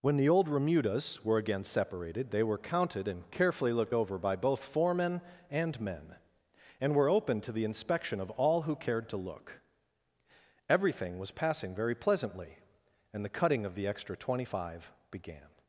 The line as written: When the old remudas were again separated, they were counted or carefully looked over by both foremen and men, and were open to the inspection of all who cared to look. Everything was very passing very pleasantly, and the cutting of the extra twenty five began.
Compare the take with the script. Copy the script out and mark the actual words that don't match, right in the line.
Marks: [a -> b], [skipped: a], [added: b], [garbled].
When the old remudas were again separated, they were counted [or -> and] carefully looked over by both foremen and men, and were open to the inspection of all who cared to look. Everything was [skipped: very] passing very pleasantly, and the cutting of the extra twenty five began.